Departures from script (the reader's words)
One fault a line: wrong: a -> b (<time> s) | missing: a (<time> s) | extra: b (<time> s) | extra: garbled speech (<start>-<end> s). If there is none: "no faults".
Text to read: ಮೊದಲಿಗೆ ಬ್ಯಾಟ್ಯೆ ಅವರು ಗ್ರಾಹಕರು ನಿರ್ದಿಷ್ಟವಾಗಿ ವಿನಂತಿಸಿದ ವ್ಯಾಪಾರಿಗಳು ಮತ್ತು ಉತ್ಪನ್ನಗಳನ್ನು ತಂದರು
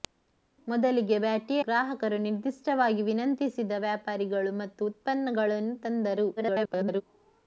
missing: ಅವರು (1.6 s)
extra: garbled speech (6.4-7.0 s)